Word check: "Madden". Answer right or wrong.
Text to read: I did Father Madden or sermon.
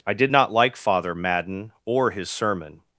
right